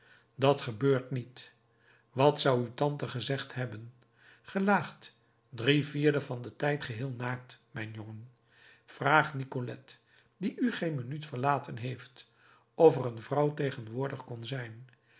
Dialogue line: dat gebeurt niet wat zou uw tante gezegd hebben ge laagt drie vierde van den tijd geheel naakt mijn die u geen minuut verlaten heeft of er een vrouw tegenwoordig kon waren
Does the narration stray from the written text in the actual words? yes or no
yes